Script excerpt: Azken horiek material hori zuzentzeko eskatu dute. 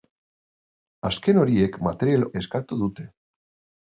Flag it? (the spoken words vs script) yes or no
yes